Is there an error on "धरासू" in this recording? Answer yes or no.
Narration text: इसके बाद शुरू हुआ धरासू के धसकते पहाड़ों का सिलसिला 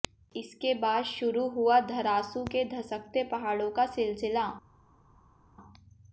no